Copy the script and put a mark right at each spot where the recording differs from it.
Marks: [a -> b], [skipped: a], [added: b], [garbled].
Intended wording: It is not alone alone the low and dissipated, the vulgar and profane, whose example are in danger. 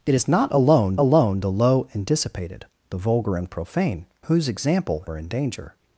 It is not alone alone the low and dissipated, the vulgar and profane, whose example are in danger.